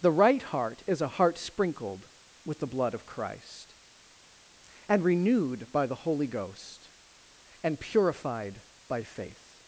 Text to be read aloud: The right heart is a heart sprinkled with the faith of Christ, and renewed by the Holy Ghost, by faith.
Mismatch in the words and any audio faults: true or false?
true